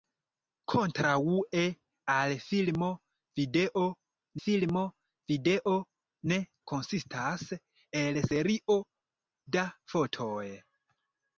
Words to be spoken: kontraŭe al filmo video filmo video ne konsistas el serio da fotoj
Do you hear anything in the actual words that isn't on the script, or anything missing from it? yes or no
no